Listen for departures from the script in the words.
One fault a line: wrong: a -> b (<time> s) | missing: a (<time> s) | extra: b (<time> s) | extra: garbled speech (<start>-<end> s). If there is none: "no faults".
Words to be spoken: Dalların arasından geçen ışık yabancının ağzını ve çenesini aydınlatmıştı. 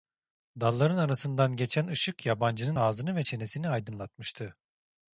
no faults